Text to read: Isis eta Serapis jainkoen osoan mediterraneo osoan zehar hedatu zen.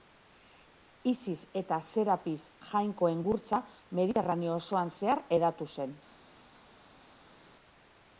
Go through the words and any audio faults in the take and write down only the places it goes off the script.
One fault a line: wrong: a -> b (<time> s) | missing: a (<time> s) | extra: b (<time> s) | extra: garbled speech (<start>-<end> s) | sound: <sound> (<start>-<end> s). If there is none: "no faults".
wrong: osoan -> gurtza (3.3 s)